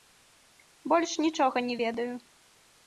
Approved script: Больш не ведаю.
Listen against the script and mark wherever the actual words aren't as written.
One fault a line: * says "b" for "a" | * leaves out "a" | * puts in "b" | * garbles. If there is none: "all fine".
* puts in "нічога"